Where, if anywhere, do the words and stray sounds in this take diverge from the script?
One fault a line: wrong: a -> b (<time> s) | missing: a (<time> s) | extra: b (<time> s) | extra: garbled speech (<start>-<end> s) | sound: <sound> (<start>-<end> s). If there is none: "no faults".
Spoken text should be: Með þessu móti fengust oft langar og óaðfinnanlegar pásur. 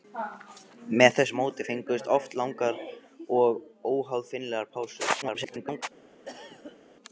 extra: garbled speech (5.2-5.8 s)
sound: cough (6.3-6.8 s)